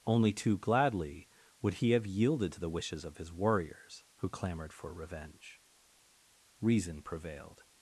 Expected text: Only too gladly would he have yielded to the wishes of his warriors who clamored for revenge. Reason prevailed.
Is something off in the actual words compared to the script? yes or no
no